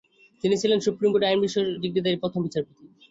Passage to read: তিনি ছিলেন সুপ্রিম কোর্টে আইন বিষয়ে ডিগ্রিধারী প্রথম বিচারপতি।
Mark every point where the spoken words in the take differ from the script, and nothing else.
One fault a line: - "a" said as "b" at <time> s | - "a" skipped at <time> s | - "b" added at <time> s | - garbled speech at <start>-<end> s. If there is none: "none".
none